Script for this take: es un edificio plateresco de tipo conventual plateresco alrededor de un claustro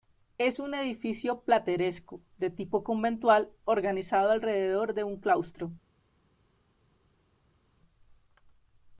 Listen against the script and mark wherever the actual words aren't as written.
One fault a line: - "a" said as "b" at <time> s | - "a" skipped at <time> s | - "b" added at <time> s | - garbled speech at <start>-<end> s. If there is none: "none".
- "plateresco" said as "organizado" at 3.6 s